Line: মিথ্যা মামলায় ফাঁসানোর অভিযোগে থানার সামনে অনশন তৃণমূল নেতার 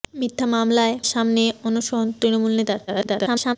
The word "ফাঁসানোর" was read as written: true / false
false